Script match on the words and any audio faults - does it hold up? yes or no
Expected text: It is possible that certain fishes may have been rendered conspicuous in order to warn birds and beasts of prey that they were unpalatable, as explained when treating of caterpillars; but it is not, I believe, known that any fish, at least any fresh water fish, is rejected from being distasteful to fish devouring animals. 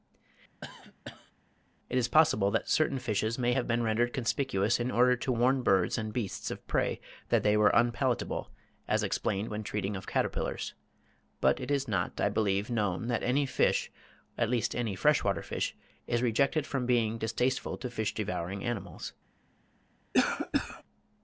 no